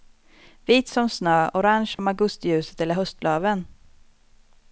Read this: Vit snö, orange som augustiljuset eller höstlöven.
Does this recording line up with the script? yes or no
no